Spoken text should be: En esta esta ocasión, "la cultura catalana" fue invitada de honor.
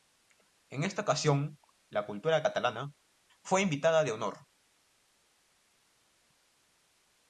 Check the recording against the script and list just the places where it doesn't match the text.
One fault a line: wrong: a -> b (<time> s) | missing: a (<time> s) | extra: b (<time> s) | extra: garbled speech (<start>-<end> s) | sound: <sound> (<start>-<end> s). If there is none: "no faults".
missing: esta (1.0 s)